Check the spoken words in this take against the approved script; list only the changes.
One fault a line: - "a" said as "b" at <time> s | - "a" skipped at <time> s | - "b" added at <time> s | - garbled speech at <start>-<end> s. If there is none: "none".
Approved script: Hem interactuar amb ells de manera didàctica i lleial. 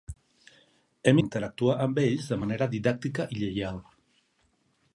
none